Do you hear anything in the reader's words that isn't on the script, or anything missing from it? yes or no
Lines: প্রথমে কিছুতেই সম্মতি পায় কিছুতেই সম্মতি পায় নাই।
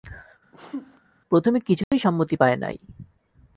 yes